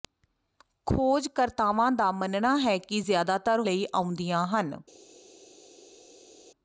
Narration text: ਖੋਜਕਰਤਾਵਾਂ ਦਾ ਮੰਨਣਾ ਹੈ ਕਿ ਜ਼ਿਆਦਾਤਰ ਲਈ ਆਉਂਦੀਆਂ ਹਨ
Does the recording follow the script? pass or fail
pass